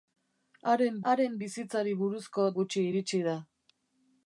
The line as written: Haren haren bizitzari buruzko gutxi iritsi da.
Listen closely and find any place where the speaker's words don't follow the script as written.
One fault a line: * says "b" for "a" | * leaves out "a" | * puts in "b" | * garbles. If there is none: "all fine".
all fine